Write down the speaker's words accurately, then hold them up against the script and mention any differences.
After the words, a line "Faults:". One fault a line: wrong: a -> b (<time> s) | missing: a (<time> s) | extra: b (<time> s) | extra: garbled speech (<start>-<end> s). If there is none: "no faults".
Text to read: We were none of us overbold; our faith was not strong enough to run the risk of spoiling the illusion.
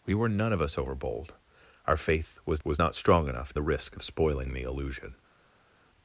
We were none of us overbold; our faith was was not strong enough the risk of spoiling the illusion.
Faults:
extra: was (2.6 s)
missing: to run (3.5 s)